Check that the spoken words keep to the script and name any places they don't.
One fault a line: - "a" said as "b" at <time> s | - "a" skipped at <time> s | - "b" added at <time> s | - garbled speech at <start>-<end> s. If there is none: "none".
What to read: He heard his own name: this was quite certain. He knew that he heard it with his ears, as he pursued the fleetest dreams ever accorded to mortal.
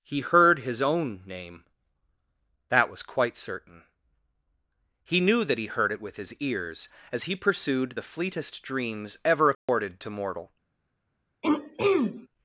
- "this" said as "that" at 2.7 s